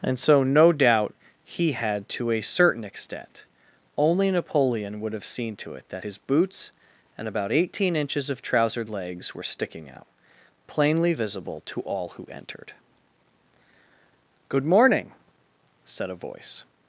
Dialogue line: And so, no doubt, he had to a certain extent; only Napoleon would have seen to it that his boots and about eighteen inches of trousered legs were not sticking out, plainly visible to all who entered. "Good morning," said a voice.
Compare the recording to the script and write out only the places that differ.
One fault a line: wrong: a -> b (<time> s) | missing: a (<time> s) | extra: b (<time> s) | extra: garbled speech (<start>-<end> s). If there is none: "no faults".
missing: not (9.4 s)